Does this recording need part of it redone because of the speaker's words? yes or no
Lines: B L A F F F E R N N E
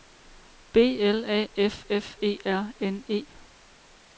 yes